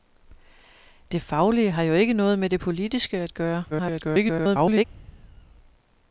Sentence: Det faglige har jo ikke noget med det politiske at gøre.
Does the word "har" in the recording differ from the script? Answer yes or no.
no